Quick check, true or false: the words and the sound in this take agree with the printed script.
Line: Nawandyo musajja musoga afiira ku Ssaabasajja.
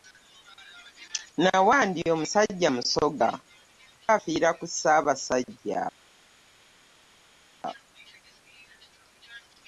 true